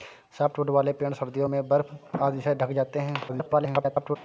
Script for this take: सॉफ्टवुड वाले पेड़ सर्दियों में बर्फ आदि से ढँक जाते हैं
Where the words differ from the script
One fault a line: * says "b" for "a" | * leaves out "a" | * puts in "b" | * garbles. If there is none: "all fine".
* garbles